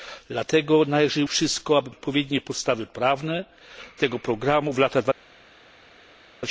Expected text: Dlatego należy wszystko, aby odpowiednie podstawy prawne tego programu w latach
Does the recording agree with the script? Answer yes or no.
yes